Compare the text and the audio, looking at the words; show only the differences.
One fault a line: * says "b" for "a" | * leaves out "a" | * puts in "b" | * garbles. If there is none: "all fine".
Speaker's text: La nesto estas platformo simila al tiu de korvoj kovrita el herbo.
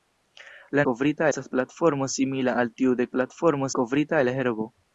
* says "kovrita" for "nesto"
* says "platformo" for "korvoj"